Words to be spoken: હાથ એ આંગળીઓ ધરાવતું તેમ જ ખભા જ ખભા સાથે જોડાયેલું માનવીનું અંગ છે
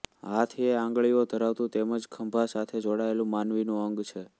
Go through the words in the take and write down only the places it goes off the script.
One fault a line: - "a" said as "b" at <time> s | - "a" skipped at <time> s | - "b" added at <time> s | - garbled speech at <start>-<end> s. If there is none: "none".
- "જ ખભા" skipped at 2.5 s